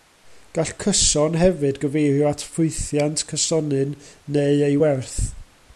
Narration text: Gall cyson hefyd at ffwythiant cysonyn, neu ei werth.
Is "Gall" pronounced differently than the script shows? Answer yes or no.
no